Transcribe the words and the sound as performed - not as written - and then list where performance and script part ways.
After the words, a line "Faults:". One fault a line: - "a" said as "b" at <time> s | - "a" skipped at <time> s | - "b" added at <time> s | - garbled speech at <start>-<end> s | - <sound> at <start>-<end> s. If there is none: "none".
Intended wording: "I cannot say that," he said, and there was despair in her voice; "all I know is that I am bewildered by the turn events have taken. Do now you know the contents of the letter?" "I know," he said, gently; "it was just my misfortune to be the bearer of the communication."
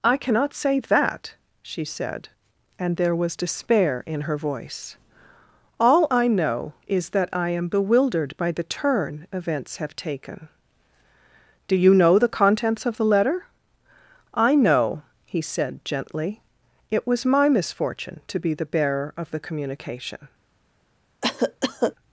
"I cannot say that," she said, and there was despair in her voice; "all I know is that I am bewildered by the turn events have taken. Do you know the contents of the letter?" "I know," he said, gently; "it was my misfortune to be the bearer of the communication."
Faults:
- "he" said as "she" at 1.6 s
- "now" skipped at 11.7 s
- "just" skipped at 17.2 s
- cough at 21.2-22.0 s